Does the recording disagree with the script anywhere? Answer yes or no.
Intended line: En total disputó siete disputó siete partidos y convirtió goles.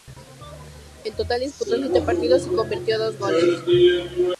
yes